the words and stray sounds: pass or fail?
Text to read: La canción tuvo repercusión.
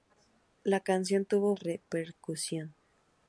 pass